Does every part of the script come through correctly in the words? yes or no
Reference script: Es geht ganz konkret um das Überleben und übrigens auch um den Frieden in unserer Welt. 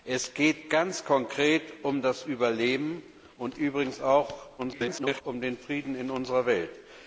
no